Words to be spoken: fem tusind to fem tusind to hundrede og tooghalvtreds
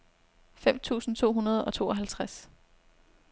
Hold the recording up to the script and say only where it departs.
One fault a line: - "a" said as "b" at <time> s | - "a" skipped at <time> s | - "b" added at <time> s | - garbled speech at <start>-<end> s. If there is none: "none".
- "fem tusind to" skipped at 1.3 s